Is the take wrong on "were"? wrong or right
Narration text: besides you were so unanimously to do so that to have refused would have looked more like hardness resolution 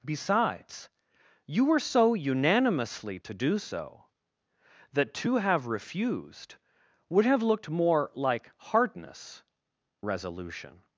right